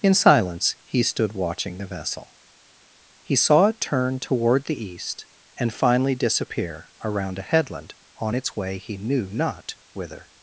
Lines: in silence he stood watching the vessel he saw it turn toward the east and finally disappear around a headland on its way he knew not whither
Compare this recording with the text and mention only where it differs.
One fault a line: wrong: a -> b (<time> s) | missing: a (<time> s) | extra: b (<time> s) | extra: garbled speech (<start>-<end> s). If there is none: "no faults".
no faults